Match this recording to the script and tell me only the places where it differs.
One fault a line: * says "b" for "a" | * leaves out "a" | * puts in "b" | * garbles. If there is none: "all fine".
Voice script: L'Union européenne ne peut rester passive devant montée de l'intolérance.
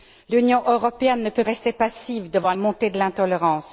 all fine